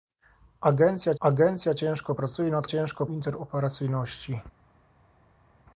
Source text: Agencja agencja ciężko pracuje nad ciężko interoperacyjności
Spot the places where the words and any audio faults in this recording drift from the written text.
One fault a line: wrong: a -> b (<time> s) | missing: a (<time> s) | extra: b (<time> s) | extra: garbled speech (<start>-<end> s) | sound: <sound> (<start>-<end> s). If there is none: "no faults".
no faults